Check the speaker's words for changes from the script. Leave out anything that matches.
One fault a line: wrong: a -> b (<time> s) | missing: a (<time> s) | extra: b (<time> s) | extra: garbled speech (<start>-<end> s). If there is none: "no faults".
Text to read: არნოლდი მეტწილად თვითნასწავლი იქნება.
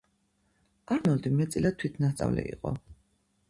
wrong: იქნება -> იყო (2.6 s)